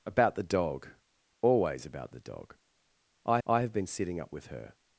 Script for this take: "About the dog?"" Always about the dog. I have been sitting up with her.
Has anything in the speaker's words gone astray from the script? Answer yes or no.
yes